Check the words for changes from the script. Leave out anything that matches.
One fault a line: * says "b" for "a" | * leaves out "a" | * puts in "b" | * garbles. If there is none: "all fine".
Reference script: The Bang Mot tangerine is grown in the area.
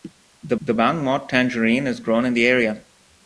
* puts in "the"